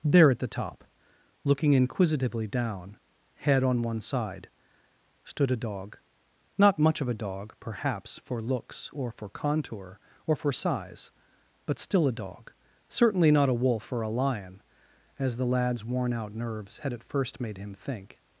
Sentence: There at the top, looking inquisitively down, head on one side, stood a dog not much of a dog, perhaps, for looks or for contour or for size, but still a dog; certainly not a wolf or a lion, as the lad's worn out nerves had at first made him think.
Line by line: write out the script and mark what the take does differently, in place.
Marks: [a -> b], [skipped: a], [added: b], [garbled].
There at the top, looking inquisitively down, head on one side, stood a dog not much of a dog, perhaps, for looks or for contour or for size, but still a dog; certainly not a wolf or a lion, as the lad's worn out nerves had at first made him think.